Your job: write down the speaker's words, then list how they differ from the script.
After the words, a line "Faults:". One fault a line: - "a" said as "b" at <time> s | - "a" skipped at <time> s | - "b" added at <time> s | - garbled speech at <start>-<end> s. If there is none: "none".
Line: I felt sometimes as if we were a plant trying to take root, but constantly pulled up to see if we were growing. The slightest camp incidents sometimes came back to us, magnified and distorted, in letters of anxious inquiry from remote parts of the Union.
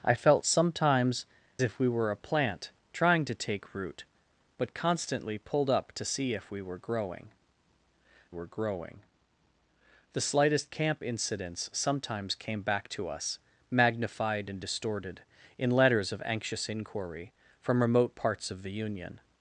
I felt sometimes if we were a plant trying to take root, but constantly pulled up to see if we were growing were growing. The slightest camp incidents sometimes came back to us, magnified and distorted, in letters of anxious inquiry from remote parts of the Union.
Faults:
- "as" skipped at 1.2 s
- "were growing" added at 8.3 s